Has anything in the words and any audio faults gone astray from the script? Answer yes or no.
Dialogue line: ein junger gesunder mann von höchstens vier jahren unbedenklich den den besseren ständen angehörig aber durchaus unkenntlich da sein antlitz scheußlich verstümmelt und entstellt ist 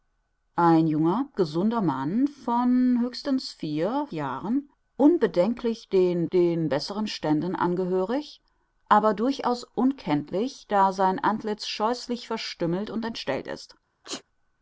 yes